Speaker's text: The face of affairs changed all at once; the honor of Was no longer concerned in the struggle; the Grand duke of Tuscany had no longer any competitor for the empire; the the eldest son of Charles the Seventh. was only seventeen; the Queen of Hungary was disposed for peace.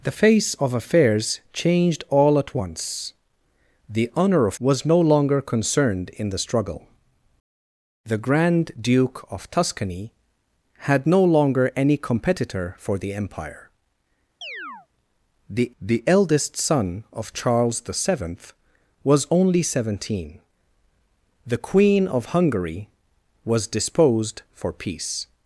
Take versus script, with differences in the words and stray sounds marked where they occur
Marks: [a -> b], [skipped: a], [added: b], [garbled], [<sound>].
The face of affairs changed all at once; the honor of Was no longer concerned in the struggle; the Grand duke of Tuscany had no longer any competitor for the empire; [chirp] the the eldest son of Charles the Seventh. was only seventeen; the Queen of Hungary was disposed for peace.